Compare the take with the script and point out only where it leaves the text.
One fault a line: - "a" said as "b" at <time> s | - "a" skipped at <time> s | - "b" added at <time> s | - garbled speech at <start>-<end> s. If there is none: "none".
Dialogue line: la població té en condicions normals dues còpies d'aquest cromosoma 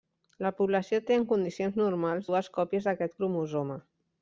none